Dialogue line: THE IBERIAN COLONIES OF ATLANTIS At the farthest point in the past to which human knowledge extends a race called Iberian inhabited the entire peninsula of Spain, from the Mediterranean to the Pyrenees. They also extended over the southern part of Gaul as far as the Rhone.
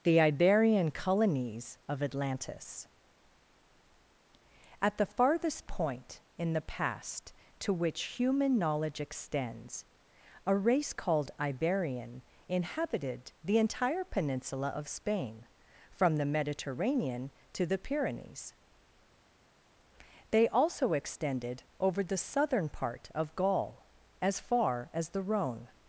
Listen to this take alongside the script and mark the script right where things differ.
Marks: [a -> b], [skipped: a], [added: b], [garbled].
THE IBERIAN COLONIES OF ATLANTIS At the farthest point in the past to which human knowledge extends a race called Iberian inhabited the entire peninsula of Spain, from the Mediterranean to the Pyrenees. They also extended over the southern part of Gaul as far as the Rhone.